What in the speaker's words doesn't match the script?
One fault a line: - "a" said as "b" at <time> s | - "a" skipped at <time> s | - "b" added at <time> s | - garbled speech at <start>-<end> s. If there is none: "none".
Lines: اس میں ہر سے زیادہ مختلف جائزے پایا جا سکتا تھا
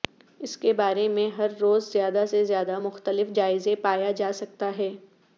- "کے بارے" added at 0.6 s
- "روز زیادہ" added at 1.6 s
- "تھا" said as "ہے" at 4.8 s